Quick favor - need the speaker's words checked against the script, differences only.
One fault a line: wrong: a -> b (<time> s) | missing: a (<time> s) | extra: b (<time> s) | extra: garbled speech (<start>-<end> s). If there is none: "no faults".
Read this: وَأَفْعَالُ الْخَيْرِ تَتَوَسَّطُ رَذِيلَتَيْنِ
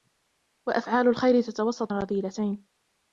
no faults